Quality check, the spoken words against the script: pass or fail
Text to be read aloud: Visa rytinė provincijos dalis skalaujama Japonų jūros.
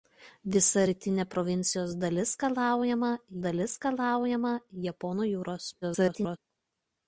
fail